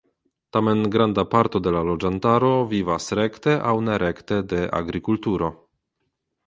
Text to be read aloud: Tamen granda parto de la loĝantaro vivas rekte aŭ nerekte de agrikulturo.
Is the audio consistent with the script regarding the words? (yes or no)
yes